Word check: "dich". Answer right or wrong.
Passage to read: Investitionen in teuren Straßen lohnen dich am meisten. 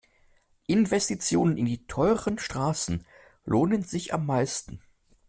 wrong